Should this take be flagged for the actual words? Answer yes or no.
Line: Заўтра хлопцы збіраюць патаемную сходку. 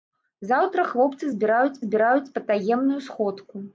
yes